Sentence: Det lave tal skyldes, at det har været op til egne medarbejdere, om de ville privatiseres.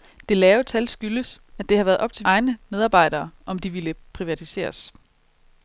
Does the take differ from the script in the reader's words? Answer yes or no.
no